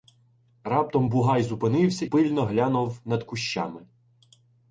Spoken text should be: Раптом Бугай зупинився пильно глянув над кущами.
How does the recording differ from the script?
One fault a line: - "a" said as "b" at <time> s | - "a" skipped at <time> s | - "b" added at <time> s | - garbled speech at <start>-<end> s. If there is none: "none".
none